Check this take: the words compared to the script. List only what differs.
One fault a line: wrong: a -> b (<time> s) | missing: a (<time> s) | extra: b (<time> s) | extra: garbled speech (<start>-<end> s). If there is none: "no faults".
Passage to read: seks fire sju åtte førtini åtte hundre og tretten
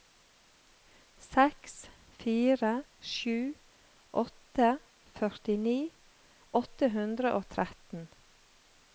no faults